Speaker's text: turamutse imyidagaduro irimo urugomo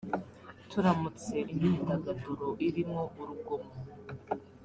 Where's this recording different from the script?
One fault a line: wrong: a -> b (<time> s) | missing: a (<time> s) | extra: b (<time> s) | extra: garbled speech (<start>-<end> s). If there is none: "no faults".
no faults